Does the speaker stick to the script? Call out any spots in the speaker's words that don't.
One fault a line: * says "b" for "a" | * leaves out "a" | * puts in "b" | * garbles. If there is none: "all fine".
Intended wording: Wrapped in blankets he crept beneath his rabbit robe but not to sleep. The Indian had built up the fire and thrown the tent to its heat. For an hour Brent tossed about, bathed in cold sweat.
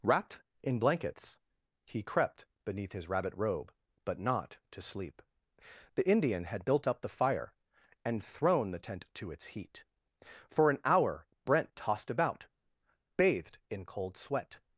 all fine